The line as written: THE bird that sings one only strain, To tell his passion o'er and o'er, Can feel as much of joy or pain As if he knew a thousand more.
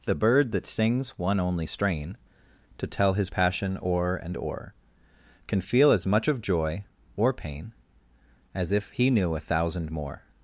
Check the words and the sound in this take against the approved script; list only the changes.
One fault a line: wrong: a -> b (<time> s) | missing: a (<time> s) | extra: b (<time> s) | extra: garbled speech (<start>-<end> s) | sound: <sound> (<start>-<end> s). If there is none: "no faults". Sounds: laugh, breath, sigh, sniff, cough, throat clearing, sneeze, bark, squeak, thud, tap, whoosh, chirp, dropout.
no faults